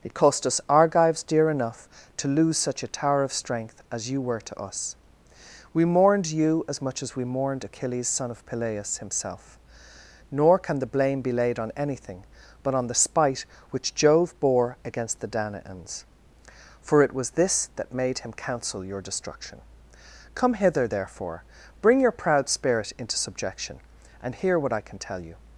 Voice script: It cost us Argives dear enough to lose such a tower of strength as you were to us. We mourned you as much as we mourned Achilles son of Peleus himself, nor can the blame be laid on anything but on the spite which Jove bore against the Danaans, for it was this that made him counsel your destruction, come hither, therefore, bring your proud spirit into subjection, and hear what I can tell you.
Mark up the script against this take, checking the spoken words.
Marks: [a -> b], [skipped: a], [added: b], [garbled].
It cost us Argives dear enough to lose such a tower of strength as you were to us. We mourned you as much as we mourned Achilles son of Peleus himself, nor can the blame be laid on anything but on the spite which Jove bore against the Danaans, for it was this that made him counsel your destruction, come hither, therefore, bring your proud spirit into subjection, and hear what I can tell you.